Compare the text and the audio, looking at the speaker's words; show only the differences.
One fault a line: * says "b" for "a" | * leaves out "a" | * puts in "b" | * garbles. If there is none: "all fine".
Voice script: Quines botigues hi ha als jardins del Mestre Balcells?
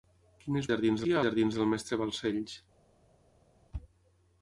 * says "jardins" for "botigues"
* leaves out "als"